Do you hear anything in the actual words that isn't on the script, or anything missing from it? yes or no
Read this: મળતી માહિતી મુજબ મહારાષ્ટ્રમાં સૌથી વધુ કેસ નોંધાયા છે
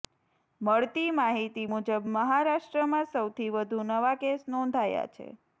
yes